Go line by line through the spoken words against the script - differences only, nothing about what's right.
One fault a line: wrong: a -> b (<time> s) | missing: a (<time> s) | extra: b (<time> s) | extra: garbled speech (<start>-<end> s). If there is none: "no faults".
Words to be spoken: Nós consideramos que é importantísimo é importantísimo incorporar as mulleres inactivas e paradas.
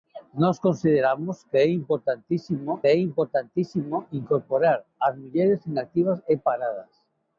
no faults